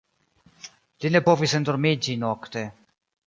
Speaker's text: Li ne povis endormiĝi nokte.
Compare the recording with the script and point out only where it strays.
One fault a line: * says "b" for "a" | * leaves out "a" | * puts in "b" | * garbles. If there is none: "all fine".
all fine